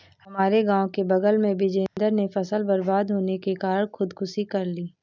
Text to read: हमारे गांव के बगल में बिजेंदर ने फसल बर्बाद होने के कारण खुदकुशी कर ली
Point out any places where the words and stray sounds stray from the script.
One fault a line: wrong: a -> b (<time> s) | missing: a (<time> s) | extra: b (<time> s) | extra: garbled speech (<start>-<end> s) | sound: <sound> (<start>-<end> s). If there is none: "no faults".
sound: dropout (1.9-2.0 s)